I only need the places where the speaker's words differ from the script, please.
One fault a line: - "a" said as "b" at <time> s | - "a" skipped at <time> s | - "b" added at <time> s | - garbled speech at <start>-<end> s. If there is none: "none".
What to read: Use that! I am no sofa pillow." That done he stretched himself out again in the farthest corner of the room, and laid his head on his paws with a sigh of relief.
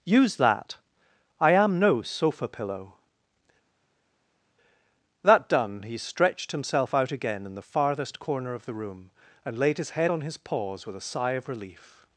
none